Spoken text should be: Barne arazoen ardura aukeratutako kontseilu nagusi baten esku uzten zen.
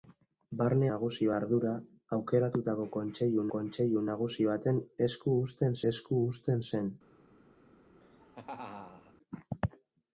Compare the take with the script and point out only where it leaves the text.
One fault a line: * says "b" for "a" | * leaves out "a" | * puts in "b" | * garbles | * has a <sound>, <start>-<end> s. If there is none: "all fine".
* says "nagusi" for "arazoen"
* puts in "kontseilu"
* puts in "esku uzten"
* has a laugh, 8.0-9.1 s